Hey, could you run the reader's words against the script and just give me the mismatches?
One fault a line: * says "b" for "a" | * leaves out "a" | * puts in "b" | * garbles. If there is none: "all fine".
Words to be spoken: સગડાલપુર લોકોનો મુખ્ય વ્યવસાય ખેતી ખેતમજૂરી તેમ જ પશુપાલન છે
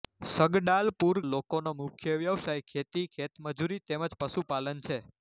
all fine